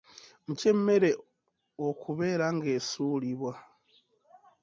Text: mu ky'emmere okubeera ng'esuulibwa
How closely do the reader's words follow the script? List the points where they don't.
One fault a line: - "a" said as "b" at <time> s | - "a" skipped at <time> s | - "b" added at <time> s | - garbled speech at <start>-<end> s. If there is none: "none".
none